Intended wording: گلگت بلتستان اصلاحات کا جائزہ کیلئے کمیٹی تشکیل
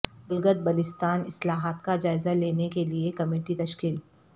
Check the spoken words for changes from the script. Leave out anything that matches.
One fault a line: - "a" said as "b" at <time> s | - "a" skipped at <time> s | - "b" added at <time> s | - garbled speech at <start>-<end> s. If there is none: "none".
- "لینے" added at 2.3 s